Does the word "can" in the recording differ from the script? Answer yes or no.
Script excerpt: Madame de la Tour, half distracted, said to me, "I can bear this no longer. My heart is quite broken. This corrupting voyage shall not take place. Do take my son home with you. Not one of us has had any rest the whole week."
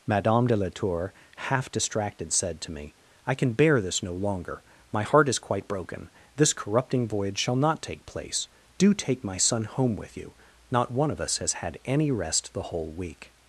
no